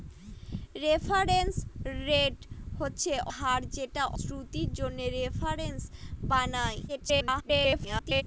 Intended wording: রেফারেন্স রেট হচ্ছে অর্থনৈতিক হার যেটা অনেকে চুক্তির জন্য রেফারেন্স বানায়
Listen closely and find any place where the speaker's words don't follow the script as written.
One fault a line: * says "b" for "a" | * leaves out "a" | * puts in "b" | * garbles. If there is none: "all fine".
* leaves out "অর্থনৈতিক"
* leaves out "অনেকে"
* garbles